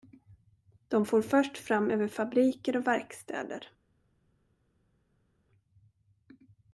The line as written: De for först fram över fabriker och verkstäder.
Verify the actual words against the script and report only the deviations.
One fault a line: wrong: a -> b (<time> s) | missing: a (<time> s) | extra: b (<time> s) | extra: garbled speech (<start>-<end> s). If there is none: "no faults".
no faults